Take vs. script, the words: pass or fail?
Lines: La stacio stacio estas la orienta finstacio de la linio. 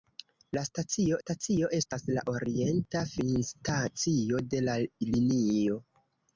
pass